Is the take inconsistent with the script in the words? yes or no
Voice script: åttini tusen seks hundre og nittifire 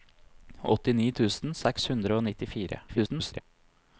yes